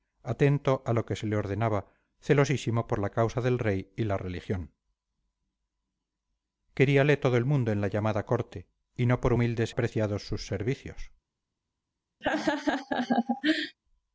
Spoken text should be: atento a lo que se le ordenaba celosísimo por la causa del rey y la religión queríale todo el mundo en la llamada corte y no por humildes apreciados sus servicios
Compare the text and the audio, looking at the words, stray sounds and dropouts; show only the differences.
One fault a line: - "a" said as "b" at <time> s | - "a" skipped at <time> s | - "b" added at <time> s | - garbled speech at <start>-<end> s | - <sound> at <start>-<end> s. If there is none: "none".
- laugh at 12.2-13.8 s